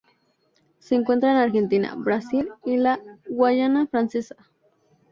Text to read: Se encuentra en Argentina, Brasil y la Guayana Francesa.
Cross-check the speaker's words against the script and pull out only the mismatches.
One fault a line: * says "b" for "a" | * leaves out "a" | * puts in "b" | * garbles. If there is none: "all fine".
all fine